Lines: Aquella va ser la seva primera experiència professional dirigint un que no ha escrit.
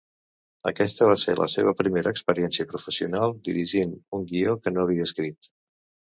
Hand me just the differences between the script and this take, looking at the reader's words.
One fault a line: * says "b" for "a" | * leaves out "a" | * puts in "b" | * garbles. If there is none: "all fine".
* says "Aquesta" for "Aquella"
* puts in "guió"
* says "havia" for "ha"